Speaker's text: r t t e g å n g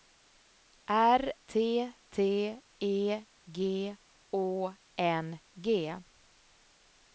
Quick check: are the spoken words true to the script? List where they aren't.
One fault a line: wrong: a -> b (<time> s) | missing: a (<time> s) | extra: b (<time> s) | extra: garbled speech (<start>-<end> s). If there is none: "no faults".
no faults